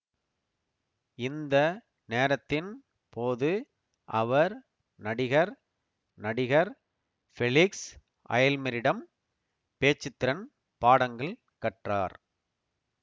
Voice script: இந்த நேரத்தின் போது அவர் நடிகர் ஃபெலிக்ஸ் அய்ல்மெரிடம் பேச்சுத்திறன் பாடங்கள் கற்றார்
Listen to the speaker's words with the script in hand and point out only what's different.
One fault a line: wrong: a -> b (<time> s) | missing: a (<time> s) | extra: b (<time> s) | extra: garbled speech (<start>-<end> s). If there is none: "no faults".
extra: நடிகர் (6.2 s)